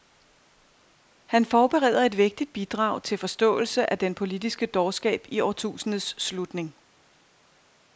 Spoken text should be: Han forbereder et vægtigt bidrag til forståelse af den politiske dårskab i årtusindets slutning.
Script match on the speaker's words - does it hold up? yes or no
yes